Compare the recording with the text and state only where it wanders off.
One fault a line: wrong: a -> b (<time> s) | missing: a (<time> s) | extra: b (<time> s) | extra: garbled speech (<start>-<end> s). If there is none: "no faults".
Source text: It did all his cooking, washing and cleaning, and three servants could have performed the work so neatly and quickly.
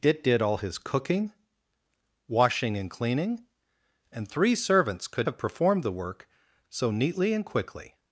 no faults